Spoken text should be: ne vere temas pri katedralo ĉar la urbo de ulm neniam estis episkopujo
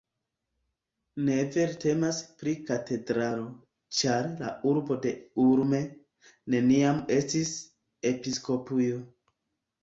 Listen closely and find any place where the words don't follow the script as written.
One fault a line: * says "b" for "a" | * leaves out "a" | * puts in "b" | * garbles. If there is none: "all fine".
all fine